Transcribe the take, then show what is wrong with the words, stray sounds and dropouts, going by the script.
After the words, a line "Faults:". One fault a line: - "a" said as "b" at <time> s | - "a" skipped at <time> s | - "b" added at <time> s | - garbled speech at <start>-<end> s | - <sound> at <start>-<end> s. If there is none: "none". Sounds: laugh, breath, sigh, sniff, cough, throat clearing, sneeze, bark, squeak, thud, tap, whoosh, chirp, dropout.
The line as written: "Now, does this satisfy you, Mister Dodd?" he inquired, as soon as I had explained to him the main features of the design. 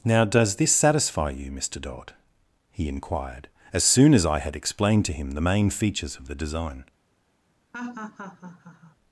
"Now, does this satisfy you, Mister Dodd?" he inquired, as soon as I had explained to him the main features of the design.
Faults:
- laugh at 7.7-9.0 s